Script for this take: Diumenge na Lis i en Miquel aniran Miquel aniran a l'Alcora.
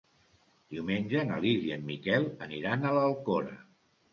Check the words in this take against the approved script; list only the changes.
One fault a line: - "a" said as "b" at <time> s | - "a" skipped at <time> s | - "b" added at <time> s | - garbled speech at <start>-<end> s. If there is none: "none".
- "Miquel aniran" skipped at 2.9 s